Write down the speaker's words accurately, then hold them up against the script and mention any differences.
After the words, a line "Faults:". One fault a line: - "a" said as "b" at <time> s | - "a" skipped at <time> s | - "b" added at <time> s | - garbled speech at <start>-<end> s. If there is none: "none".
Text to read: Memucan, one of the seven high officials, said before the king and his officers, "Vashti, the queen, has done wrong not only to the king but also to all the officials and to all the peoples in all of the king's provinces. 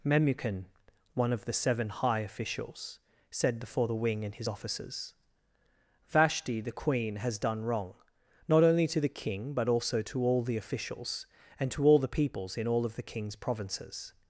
Memucan, one of the seven high officials, said before the wing and his officers, "Vashti, the queen, has done wrong not only to the king but also to all the officials and to all the peoples in all of the king's provinces.
Faults:
- "king" said as "wing" at 3.9 s